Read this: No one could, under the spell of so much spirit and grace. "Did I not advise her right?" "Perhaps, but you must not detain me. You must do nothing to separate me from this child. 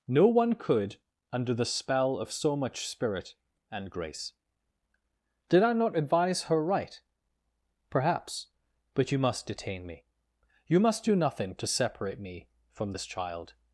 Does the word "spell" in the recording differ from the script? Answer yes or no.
no